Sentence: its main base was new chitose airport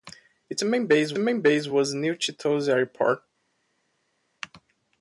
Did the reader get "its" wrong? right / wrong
right